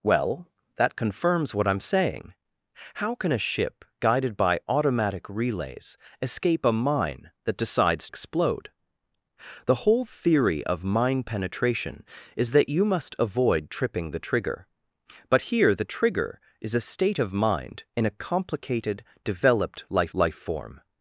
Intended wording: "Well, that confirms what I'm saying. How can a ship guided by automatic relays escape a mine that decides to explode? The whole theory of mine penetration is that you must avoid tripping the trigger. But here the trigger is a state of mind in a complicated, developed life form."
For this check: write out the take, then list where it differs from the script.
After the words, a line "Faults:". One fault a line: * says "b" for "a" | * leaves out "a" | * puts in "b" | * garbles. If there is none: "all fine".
"Well, that confirms what I'm saying. How can a ship guided by automatic relays escape a mine that decides explode? The whole theory of mine penetration is that you must avoid tripping the trigger. But here the trigger is a state of mind in a complicated, developed life life form."
Faults:
* leaves out "to"
* puts in "life"